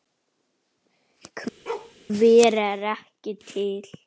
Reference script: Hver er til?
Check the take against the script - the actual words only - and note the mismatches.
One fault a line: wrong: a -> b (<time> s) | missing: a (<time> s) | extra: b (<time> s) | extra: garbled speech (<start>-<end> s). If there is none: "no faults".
extra: ekki (2.9 s)